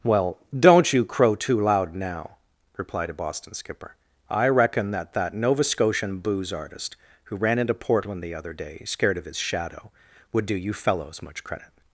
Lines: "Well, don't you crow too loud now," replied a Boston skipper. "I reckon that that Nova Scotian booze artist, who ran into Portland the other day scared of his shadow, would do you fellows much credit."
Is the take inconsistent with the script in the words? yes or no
no